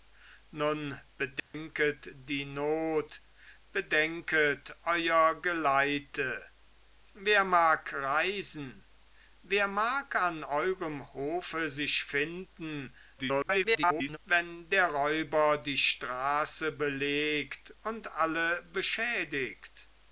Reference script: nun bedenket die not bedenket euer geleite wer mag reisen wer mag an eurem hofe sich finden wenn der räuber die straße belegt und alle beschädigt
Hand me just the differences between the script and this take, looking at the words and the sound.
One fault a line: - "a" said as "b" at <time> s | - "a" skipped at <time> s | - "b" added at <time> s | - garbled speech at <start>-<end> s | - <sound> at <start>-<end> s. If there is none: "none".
- dropout at 1.4-1.5 s
- garbled speech at 13.2-14.2 s